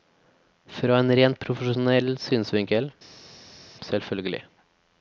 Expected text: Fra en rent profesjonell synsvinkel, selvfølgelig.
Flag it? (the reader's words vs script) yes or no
no